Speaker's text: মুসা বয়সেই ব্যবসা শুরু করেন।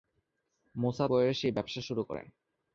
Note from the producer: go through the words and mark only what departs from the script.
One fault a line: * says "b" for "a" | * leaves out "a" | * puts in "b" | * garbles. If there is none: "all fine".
all fine